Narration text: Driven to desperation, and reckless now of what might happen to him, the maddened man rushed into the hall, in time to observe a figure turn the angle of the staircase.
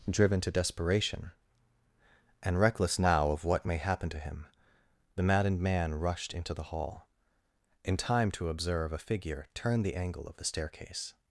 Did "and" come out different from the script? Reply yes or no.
no